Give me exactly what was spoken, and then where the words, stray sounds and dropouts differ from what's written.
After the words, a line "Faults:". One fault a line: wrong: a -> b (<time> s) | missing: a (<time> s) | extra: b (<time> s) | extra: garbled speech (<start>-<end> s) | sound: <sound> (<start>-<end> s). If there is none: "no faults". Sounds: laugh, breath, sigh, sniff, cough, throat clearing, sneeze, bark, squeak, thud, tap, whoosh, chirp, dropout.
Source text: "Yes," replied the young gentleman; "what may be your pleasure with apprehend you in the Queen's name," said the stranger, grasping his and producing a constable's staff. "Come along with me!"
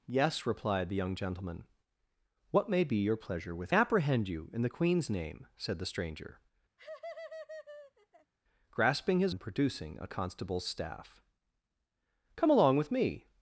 "Yes," replied the young gentleman; "what may be your pleasure with apprehend you in the Queen's name," said the stranger, grasping his and producing a constable's staff. "Come along with me!"
Faults:
sound: laugh (6.8-8.3 s)